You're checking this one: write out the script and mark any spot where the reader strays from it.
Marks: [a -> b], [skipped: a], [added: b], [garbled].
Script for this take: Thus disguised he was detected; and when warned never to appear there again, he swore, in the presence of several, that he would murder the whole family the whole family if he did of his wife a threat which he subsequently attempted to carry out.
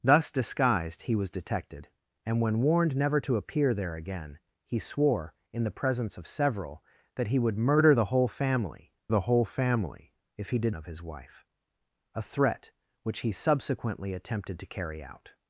Thus disguised he was detected; and when warned never to appear there again, he swore, in the presence of several, that he would murder the whole family the whole family if he did of his wife a threat which he subsequently attempted to carry out.